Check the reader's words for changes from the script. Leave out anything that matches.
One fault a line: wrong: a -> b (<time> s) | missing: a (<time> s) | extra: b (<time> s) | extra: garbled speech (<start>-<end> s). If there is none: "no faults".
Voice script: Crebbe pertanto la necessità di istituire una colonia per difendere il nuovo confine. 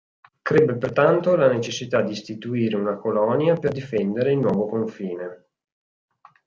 no faults